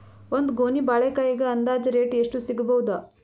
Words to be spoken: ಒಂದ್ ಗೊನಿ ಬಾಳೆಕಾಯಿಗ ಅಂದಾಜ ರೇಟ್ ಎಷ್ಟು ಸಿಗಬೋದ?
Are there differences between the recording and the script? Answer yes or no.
no